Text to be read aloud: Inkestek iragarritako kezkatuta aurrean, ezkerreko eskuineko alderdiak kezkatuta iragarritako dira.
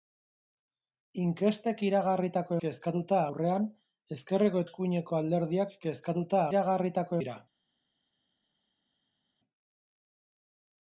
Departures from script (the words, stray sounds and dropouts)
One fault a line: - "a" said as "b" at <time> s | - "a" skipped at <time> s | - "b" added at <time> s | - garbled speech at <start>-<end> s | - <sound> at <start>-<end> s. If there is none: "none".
none